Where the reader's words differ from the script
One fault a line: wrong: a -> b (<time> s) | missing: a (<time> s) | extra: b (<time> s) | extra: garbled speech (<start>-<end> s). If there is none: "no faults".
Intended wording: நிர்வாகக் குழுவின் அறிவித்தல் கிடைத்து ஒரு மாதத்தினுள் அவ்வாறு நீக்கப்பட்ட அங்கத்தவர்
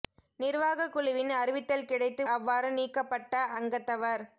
missing: ஒரு மாதத்தினுள் (2.2 s)